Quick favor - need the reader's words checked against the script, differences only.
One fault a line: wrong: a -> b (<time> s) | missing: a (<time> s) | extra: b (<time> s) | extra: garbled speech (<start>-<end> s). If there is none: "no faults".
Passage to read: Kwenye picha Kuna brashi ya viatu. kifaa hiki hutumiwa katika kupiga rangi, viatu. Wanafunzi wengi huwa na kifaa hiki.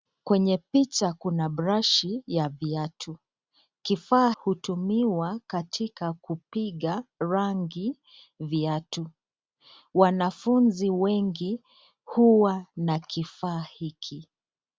missing: hiki (4.3 s)